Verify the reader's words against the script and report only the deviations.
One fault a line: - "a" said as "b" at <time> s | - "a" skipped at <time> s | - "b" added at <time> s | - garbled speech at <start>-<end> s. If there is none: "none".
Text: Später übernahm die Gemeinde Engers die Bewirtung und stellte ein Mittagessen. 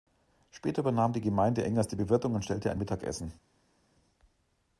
none